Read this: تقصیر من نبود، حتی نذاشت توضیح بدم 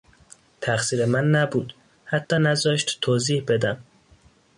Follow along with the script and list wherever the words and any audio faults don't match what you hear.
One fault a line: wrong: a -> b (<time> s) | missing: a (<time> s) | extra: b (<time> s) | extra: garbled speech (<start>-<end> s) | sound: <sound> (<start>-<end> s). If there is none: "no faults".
sound: dropout (2.2-2.3 s)